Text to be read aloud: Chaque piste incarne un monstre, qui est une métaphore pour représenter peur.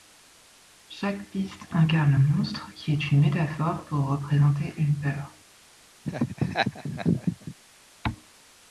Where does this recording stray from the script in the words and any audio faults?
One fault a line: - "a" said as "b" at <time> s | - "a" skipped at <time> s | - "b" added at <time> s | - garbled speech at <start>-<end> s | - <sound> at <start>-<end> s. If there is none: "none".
- "une" added at 4.8 s
- laugh at 6.1-7.6 s